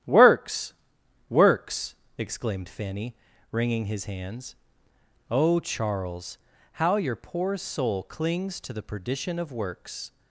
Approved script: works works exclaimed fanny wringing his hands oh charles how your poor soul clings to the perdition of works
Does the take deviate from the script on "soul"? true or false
false